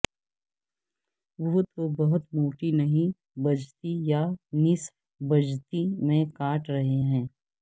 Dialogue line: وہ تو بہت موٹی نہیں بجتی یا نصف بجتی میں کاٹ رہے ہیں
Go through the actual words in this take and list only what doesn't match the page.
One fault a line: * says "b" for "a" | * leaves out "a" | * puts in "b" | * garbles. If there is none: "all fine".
all fine